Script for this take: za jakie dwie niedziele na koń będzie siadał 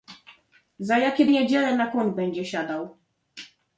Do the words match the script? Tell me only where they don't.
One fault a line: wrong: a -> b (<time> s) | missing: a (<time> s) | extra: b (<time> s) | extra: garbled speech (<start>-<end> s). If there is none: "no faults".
missing: dwie (1.2 s)